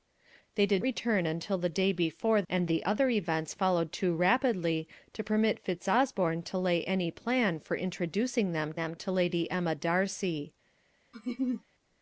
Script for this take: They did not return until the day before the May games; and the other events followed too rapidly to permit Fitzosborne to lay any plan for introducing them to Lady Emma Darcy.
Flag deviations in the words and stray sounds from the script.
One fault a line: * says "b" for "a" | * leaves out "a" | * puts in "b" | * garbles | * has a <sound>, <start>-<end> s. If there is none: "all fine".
* leaves out "not"
* leaves out "the May games"
* puts in "them"
* has a laugh, 11.1-11.6 s